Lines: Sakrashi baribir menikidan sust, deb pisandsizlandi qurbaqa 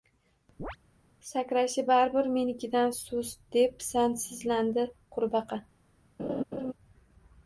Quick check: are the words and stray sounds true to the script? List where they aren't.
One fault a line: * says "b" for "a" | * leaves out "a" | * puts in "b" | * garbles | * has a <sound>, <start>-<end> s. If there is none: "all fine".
* has a chirp, 0.6-0.8 s
* has a laugh, 6.2-6.7 s